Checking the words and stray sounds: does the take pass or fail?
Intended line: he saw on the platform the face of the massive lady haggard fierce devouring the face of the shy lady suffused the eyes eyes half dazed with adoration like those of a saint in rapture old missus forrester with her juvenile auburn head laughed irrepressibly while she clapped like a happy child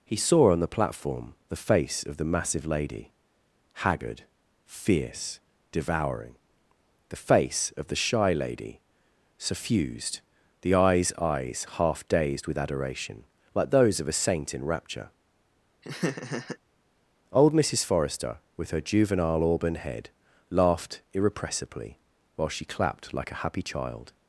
fail